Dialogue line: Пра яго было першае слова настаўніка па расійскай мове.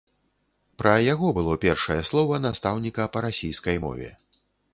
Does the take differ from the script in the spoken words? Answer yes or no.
no